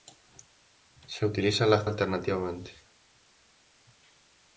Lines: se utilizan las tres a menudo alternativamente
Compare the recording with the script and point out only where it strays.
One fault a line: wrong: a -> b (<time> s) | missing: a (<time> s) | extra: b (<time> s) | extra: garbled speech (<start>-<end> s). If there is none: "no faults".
missing: tres a menudo (1.9 s)